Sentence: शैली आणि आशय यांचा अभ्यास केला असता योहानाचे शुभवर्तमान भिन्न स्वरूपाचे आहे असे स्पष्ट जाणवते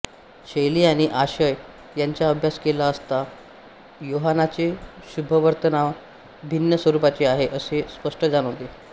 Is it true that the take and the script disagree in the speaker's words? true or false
false